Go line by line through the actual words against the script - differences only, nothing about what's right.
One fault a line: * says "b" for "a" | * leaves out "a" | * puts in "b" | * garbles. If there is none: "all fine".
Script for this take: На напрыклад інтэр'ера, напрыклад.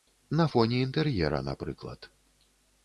* says "фоне" for "напрыклад"